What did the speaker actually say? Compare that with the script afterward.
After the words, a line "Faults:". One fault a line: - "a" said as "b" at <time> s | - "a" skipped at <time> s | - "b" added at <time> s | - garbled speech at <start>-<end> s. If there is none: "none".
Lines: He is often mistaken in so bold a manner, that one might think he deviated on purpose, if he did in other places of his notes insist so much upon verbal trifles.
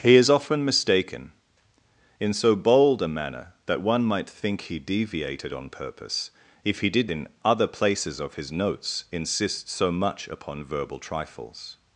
He is often mistaken in so bold a manner, that one might think he deviated on purpose, if he did in other places of his notes insist so much upon verbal trifles.
Faults:
none